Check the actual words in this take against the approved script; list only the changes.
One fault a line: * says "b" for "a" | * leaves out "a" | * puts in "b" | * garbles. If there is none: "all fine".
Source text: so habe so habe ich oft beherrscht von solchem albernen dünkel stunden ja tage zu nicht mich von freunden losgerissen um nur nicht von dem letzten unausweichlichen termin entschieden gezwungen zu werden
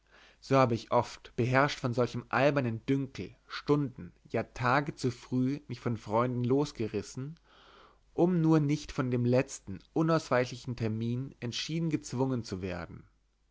* leaves out "so habe"
* says "früh" for "nicht"